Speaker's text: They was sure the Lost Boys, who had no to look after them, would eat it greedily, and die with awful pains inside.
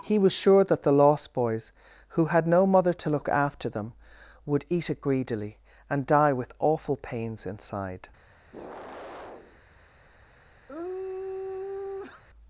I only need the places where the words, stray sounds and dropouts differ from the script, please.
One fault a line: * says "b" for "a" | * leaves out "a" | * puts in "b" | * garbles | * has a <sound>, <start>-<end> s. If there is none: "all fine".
* says "He" for "They"
* puts in "that"
* puts in "mother"
* has a sigh, 8.5-9.6 s
* has a sigh, 10.7-12.2 s